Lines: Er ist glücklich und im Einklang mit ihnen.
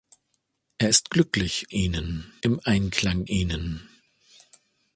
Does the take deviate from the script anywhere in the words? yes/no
yes